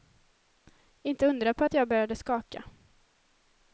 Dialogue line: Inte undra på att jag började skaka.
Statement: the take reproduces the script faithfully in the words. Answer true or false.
true